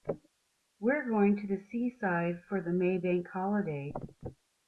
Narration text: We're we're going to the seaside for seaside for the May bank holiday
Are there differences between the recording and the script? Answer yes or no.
yes